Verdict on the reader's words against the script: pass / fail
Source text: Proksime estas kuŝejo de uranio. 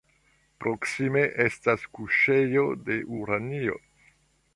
pass